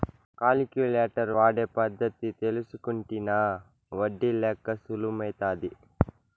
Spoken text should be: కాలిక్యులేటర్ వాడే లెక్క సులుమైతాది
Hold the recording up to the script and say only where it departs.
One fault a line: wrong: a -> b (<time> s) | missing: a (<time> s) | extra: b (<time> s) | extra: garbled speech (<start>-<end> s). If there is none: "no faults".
extra: పద్ధతి తెల్సుకుంటినా ఒడ్డి (1.8 s)